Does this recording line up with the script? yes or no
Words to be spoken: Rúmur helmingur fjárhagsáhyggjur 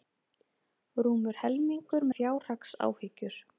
yes